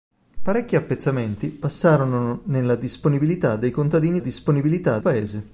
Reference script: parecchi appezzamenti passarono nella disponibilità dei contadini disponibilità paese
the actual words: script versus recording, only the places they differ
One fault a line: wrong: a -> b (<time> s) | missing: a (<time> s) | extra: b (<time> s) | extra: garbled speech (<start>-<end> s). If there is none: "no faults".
no faults